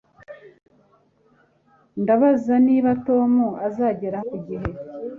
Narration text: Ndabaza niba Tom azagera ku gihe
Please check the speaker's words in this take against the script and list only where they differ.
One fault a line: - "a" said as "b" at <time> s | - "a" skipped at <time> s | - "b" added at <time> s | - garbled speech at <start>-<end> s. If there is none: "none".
none